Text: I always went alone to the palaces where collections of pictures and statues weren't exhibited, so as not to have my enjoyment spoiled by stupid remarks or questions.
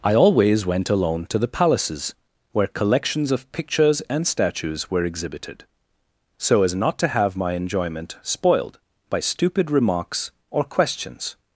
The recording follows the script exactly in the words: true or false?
false